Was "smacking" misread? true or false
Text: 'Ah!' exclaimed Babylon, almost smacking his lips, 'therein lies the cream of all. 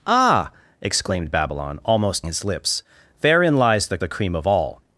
true